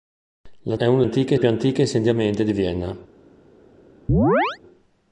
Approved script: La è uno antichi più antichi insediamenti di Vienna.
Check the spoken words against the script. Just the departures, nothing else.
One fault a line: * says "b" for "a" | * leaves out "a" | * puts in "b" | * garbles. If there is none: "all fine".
all fine